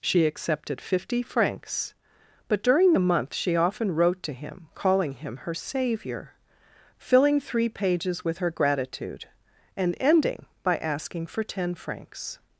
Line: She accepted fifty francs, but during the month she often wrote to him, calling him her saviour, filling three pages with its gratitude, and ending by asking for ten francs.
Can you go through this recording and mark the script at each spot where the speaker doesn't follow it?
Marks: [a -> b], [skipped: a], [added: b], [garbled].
She accepted fifty francs, but during the month she often wrote to him, calling him her saviour, filling three pages with [its -> her] gratitude, and ending by asking for ten francs.